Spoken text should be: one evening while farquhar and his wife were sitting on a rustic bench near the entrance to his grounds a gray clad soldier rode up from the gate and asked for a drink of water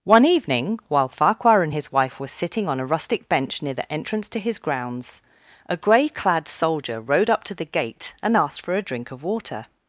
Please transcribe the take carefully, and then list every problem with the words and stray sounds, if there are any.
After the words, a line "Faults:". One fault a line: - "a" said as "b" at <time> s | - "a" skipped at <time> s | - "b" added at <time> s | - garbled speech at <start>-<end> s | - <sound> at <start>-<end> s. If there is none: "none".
one evening while farquhar and his wife were sitting on a rustic bench near the entrance to his grounds a gray clad soldier rode up to the gate and asked for a drink of water
Faults:
- "from" said as "to" at 7.5 s